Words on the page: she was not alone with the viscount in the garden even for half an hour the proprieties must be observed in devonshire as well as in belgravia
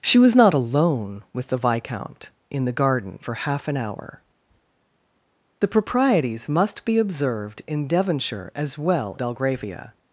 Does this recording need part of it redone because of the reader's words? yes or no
yes